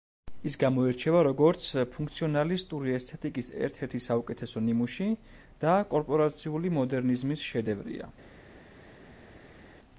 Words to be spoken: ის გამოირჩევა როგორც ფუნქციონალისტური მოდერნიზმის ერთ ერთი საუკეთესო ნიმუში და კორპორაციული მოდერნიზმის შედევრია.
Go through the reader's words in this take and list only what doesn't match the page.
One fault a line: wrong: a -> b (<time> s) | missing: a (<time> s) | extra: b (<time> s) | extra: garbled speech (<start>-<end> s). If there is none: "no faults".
wrong: მოდერნიზმის -> ესთეტიკის (3.0 s)